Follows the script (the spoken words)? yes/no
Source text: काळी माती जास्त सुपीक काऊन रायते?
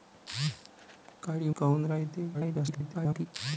no